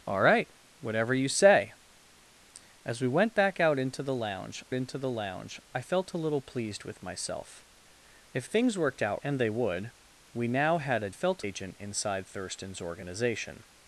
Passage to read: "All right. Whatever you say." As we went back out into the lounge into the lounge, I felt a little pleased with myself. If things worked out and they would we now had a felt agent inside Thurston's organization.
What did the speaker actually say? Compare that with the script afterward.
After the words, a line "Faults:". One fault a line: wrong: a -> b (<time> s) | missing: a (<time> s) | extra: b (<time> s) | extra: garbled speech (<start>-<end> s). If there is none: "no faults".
"All right. Whatever you say." As we went back out into the lounge into the lounge, I felt a little pleased with myself. If things worked out and they would we now had a felt agent inside Thurston's organization.
Faults:
no faults